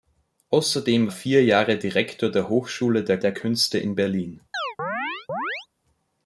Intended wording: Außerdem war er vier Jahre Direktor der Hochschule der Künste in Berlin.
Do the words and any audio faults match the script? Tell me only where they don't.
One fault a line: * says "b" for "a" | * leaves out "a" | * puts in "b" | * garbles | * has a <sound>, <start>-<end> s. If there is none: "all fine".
* leaves out "war"
* puts in "der"
* has a chirp, 4.5-5.7 s